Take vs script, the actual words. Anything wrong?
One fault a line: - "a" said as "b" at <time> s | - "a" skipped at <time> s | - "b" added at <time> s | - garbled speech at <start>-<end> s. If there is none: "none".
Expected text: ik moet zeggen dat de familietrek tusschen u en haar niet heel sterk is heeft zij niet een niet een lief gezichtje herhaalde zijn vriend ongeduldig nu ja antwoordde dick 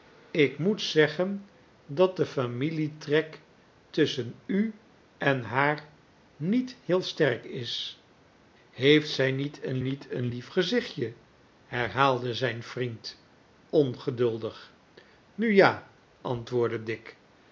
none